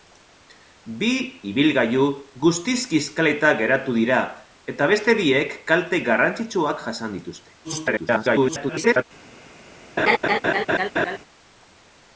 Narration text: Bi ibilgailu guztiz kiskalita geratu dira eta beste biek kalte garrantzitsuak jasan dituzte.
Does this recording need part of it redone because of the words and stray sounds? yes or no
yes